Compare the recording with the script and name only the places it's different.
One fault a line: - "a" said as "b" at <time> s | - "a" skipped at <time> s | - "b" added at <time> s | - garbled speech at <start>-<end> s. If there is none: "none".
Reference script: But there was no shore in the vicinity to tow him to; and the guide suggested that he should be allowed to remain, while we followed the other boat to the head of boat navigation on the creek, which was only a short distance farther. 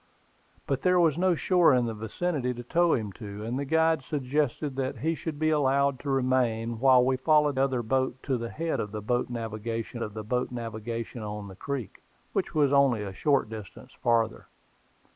- "the" skipped at 7.6 s
- "of boat navigation" added at 10.0 s